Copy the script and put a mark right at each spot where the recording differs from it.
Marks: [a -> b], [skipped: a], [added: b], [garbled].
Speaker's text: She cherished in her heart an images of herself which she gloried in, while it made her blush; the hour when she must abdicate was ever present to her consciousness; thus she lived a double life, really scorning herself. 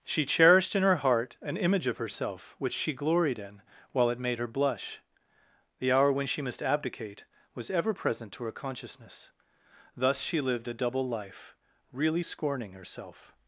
She cherished in her heart an [images -> image] of herself which she gloried in, while it made her blush; the hour when she must abdicate was ever present to her consciousness; thus she lived a double life, really scorning herself.